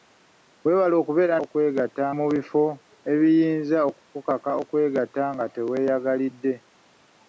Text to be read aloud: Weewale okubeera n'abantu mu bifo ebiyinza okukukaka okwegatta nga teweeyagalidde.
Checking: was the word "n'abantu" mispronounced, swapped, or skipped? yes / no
yes